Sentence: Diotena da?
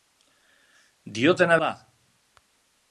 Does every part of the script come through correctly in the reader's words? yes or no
yes